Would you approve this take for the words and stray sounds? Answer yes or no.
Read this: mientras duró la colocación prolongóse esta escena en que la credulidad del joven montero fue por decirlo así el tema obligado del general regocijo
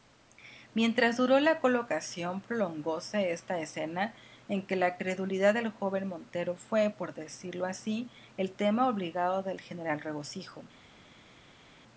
yes